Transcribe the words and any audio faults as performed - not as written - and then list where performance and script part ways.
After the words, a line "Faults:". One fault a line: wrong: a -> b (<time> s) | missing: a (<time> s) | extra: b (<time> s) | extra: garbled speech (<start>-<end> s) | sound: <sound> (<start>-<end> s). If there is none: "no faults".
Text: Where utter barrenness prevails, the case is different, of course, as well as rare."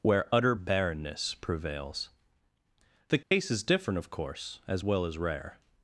Where utter barrenness prevails, the case is different, of course, as well as rare."
Faults:
sound: dropout (3.2-3.3 s)